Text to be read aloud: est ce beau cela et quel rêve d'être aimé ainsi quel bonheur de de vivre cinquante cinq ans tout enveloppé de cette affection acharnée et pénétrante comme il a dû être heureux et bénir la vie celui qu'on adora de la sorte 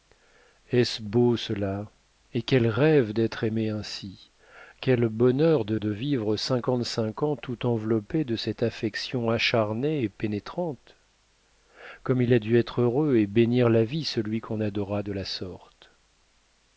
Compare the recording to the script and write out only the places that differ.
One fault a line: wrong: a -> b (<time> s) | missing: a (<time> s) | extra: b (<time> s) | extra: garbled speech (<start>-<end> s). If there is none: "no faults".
no faults